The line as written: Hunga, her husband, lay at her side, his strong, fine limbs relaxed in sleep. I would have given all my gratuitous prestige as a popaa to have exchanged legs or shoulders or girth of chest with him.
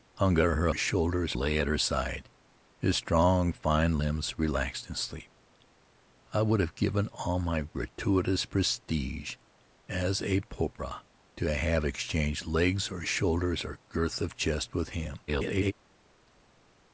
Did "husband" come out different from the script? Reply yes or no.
yes